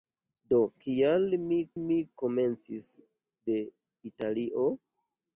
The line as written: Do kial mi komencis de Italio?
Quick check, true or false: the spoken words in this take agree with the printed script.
false